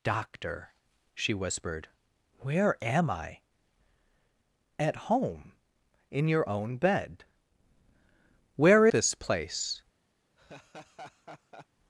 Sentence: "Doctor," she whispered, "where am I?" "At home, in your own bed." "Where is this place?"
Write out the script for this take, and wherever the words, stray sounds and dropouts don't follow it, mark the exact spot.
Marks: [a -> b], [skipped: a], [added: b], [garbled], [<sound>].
"Doctor," she whispered, "where am I?" "At home, in your own bed." "Where [skipped: is] this place?" [laugh]